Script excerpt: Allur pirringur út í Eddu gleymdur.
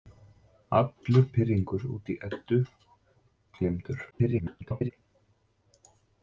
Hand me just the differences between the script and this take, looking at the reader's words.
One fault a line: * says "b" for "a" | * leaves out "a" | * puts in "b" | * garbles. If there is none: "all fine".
* garbles